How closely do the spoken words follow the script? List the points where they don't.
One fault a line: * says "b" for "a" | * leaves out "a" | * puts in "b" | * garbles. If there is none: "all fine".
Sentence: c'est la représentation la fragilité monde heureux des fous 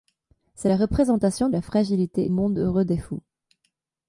all fine